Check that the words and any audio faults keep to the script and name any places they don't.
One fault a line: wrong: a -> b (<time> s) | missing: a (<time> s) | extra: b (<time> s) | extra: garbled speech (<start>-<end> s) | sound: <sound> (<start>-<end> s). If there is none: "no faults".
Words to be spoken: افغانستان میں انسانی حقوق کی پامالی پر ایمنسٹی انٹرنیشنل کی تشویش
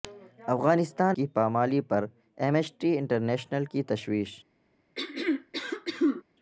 missing: میں انسانی حقوق (1.2 s)
sound: throat clearing (5.0-6.2 s)